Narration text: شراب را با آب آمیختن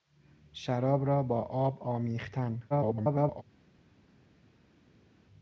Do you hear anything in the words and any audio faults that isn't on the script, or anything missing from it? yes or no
yes